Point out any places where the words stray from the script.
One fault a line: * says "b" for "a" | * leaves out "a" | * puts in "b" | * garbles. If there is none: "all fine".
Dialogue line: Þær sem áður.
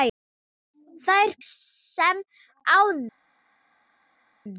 all fine